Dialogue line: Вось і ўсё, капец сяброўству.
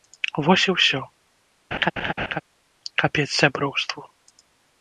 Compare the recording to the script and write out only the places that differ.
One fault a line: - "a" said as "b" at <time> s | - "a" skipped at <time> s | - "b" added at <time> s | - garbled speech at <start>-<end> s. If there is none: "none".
none